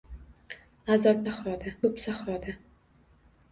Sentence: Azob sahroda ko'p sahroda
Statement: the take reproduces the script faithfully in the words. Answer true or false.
true